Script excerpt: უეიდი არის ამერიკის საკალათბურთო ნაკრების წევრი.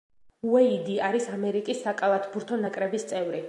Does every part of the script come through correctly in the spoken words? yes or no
yes